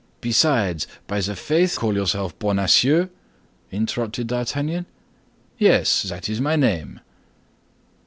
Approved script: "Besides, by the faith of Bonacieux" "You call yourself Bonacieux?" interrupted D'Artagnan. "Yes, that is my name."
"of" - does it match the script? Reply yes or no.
no